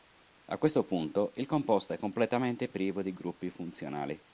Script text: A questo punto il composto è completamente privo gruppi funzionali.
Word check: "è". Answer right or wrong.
right